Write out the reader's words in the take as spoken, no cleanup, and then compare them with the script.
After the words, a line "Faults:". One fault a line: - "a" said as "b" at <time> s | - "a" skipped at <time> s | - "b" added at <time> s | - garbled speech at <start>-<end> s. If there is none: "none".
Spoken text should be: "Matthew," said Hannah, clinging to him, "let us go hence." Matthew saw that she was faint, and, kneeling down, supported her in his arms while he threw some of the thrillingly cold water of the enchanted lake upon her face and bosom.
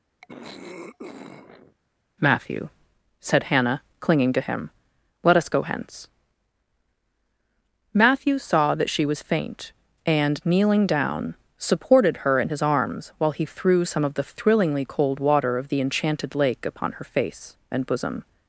"Matthew," said Hannah, clinging to him, "let us go hence." Matthew saw that she was faint, and, kneeling down, supported her in his arms while he threw some of the thrillingly cold water of the enchanted lake upon her face and bosom.
Faults:
none